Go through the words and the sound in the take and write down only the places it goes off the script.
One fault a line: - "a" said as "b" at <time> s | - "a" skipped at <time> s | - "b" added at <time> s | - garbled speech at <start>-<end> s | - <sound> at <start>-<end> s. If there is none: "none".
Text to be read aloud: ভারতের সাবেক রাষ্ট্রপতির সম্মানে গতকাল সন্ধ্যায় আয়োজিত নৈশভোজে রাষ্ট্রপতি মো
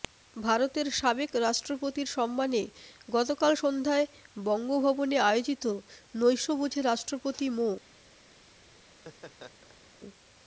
- "বঙ্গভবনে" added at 4.4 s
- laugh at 8.9-9.9 s